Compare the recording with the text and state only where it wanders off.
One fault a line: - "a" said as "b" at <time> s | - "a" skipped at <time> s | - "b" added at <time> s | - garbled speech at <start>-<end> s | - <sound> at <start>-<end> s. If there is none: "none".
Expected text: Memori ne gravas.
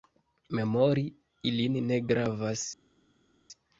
- "ilin" added at 1.5 s